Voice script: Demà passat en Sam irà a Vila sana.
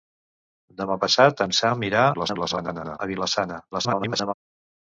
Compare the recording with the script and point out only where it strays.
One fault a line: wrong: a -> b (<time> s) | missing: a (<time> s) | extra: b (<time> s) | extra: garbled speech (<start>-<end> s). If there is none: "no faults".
extra: garbled speech (2.1-3.0 s)
extra: garbled speech (3.7-4.3 s)